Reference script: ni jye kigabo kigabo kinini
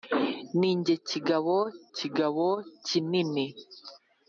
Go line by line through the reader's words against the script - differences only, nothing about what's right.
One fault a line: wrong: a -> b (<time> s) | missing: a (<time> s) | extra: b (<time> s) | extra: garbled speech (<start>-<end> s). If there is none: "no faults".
no faults